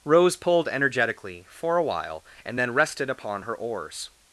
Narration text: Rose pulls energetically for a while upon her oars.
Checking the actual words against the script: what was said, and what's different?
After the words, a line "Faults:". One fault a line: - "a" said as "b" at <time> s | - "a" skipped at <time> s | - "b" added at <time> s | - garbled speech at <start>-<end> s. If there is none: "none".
Rose pulled energetically for a while and then rested upon her oars.
Faults:
- "pulls" said as "pulled" at 0.3 s
- "and then rested" added at 2.4 s